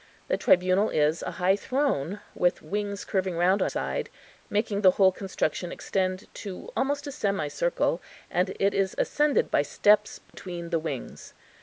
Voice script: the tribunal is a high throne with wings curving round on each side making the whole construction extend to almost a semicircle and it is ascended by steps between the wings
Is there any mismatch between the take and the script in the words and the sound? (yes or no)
yes